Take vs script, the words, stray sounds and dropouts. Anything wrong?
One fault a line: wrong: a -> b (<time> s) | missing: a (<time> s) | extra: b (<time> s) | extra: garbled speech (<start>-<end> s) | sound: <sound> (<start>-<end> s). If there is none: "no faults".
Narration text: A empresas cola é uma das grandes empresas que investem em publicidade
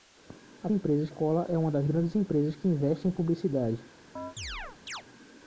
sound: chirp (4.2-5.0 s)